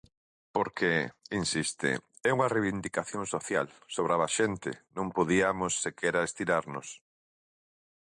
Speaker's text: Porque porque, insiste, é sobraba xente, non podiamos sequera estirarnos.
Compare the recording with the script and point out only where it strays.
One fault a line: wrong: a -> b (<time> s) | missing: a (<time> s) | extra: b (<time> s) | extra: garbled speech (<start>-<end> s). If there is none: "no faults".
missing: porque (0.9 s)
extra: unha reivindicación social (2.4 s)